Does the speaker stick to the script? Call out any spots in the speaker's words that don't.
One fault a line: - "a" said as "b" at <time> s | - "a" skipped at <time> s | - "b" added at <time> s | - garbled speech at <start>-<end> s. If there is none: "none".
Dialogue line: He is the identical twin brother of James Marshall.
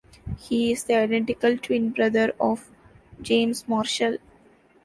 none